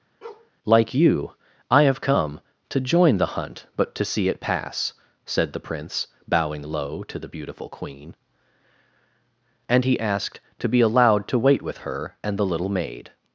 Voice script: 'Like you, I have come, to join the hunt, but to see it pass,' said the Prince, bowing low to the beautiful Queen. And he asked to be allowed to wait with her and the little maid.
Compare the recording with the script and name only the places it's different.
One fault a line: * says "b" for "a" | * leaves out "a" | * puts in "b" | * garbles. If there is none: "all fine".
all fine